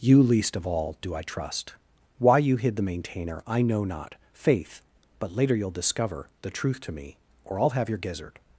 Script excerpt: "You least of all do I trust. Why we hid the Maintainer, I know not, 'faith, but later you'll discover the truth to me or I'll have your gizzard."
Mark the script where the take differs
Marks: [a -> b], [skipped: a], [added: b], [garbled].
"You least of all do I trust. Why [we -> you] hid the Maintainer, I know not, 'faith, but later you'll discover the truth to me or I'll have your gizzard."